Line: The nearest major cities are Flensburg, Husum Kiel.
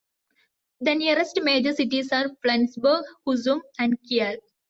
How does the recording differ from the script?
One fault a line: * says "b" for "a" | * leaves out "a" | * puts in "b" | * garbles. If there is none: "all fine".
* puts in "and"